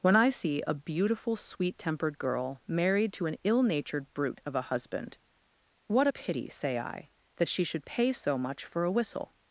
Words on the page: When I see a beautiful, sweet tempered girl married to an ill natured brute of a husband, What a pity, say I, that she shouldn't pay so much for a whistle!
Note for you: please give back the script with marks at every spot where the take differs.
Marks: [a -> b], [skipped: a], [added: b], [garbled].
When I see a beautiful, sweet tempered girl married to an ill natured brute of a husband, What a pity, say I, that she [shouldn't -> should] pay so much for a whistle!